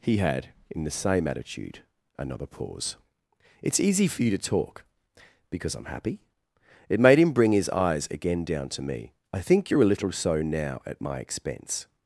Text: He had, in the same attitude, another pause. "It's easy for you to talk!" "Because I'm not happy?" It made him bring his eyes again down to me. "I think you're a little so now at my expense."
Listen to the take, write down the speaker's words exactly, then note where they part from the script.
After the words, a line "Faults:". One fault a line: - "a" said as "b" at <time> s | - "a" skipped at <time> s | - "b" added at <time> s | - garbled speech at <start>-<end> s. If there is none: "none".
He had, in the same attitude, another pause. "It's easy for you to talk!" "Because I'm happy?" It made him bring his eyes again down to me. "I think you're a little so now at my expense."
Faults:
- "not" skipped at 5.8 s